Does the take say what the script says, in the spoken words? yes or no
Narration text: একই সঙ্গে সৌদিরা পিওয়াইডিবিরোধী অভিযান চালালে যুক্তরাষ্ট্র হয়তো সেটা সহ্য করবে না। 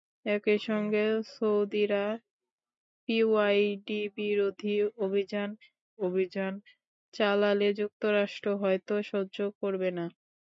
no